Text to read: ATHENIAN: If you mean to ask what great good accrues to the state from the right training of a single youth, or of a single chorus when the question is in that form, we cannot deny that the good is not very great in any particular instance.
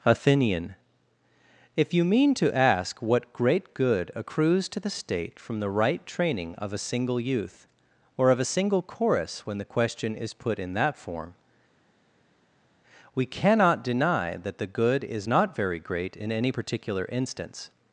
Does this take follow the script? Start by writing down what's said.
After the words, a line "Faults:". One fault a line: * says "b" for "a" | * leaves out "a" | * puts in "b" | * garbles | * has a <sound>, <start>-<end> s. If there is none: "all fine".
ATHENIAN: If you mean to ask what great good accrues to the state from the right training of a single youth, or of a single chorus when the question is put in that form, we cannot deny that the good is not very great in any particular instance.
Faults:
* puts in "put"